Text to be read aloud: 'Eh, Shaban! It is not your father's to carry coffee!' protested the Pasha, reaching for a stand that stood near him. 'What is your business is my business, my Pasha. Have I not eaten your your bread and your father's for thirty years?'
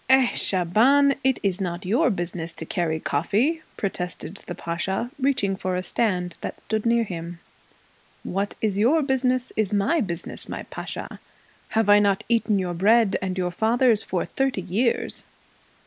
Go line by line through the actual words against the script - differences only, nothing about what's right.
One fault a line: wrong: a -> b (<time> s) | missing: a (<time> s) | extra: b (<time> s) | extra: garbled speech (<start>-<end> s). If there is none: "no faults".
wrong: father's -> business (2.1 s)
missing: your (12.7 s)